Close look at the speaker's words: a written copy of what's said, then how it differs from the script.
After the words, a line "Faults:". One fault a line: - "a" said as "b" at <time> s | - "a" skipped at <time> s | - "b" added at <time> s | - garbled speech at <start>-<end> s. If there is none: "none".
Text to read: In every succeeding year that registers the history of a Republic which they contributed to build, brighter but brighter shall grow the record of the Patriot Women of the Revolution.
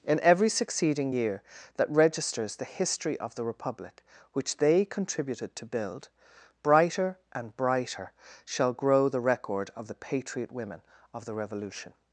In every succeeding year that registers the history of the Republic which they contributed to build, brighter and brighter shall grow the record of the Patriot Women of the Revolution.
Faults:
- "a" said as "the" at 3.3 s
- "but" said as "and" at 7.3 s